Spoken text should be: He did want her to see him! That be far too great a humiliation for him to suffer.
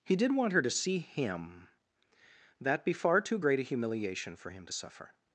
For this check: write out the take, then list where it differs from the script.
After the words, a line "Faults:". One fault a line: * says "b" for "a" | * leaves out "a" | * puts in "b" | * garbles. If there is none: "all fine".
He did want her to see him! That be far too great a humiliation for him to suffer.
Faults:
all fine